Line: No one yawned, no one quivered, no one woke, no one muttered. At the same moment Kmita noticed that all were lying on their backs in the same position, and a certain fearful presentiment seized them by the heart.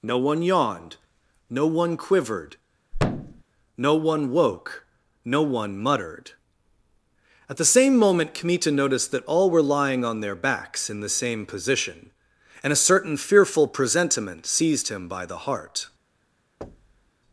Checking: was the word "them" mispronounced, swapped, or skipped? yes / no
yes